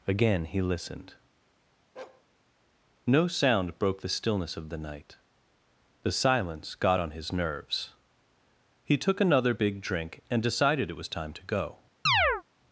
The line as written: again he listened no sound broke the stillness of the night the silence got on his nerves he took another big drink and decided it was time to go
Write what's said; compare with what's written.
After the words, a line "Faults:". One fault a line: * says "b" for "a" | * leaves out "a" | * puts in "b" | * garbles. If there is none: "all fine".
again he listened no sound broke the stillness of the night the silence got on his nerves he took another big drink and decided it was time to go
Faults:
all fine